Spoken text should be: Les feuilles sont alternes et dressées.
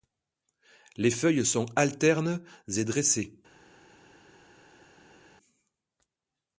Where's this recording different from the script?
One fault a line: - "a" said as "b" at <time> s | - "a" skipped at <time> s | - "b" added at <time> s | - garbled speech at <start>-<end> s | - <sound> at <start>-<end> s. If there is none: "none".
none